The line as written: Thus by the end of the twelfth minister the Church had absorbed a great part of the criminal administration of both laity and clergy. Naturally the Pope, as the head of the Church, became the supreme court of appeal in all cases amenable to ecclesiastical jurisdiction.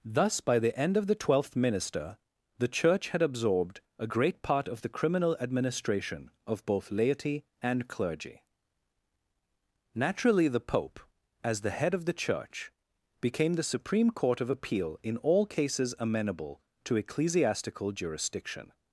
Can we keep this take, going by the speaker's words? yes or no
yes